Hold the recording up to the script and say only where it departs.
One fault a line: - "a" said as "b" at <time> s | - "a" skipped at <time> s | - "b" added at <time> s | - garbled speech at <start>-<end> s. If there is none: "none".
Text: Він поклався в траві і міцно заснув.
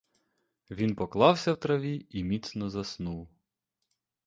none